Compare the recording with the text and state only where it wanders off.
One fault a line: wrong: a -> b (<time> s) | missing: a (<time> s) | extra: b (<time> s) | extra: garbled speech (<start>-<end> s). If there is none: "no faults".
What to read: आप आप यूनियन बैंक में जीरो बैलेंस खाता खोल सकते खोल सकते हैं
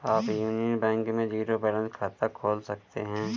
missing: आप (0.3 s)
missing: खोल सकते (3.0 s)